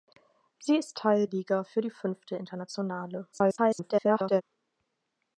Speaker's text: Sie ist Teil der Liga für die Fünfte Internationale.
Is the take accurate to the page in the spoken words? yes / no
no